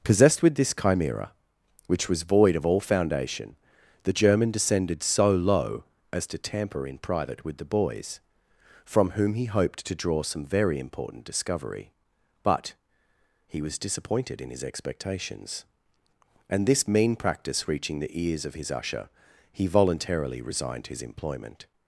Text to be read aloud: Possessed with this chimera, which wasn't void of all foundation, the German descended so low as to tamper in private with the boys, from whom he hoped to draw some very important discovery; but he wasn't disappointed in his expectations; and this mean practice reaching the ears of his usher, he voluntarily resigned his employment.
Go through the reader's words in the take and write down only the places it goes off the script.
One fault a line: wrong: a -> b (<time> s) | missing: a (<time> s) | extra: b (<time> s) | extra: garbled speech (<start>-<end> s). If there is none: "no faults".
wrong: wasn't -> was (2.1 s)
wrong: wasn't -> was (13.6 s)